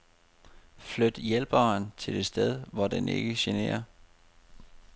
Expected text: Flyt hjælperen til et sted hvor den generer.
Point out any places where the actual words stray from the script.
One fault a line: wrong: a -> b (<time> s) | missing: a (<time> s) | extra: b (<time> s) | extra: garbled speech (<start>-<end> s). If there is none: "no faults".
extra: ikke (3.1 s)